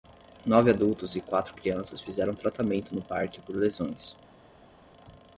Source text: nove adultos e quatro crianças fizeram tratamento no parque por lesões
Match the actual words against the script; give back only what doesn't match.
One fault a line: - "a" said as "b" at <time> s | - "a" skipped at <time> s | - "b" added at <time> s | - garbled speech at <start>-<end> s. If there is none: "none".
none